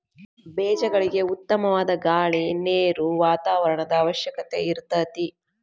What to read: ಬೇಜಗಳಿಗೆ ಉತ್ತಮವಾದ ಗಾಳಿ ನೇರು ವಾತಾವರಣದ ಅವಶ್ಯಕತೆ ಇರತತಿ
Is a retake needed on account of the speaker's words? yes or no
no